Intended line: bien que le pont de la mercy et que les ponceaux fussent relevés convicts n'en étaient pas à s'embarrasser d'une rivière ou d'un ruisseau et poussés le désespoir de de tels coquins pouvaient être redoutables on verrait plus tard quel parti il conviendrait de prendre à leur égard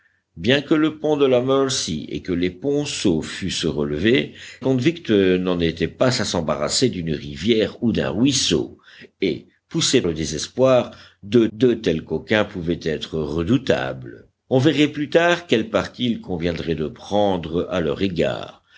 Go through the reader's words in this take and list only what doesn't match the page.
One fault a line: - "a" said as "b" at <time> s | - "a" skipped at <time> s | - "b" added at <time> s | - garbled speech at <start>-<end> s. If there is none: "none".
none